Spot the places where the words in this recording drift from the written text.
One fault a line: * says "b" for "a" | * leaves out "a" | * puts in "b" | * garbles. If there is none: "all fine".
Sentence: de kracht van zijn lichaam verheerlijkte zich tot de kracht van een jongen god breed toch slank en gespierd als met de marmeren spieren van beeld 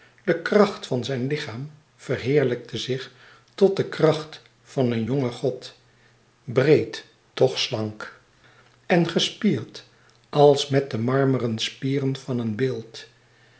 * puts in "een"